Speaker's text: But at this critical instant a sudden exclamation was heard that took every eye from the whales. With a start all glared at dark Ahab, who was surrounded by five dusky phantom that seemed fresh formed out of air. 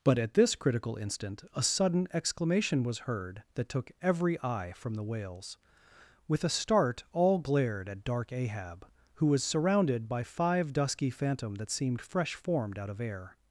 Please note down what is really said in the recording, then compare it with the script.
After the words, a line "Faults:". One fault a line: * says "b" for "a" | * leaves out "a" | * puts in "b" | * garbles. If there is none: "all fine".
But at this critical instant a sudden exclamation was heard that took every eye from the whales. With a start all glared at dark Ahab, who was surrounded by five dusky phantom that seemed fresh formed out of air.
Faults:
all fine